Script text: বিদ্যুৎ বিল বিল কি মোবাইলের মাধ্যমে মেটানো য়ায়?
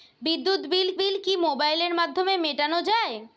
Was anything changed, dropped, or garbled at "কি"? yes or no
no